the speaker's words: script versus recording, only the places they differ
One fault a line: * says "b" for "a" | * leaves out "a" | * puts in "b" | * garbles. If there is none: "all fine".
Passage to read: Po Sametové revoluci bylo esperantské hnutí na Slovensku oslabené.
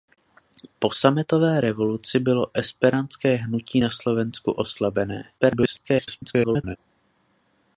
* garbles